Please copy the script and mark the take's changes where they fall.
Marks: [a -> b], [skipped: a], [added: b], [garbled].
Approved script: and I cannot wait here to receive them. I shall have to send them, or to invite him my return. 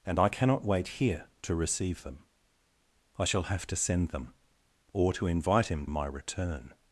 and I cannot wait here to receive them. I shall have to send them, or to invite him my return.